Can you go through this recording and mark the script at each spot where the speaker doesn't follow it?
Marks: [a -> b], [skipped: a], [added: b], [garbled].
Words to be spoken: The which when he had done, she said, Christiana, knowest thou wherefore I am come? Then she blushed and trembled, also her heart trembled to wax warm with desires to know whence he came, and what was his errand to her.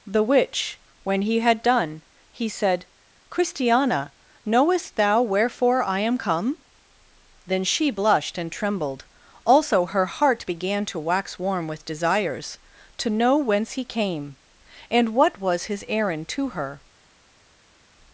The which when he had done, [she -> he] said, Christiana, knowest thou wherefore I am come? Then she blushed and trembled, also her heart [trembled -> began] to wax warm with desires to know whence he came, and what was his errand to her.